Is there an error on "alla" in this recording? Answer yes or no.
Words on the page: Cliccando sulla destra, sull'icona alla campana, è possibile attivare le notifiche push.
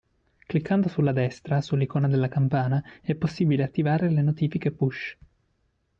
yes